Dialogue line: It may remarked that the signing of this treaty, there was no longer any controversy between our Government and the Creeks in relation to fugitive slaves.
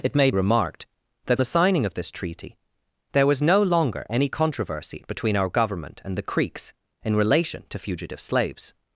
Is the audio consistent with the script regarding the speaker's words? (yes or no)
yes